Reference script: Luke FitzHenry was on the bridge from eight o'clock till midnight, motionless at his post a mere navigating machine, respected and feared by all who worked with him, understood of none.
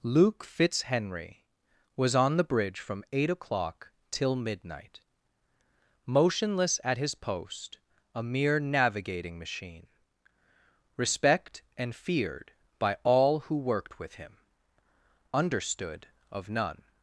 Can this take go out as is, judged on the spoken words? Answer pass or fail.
fail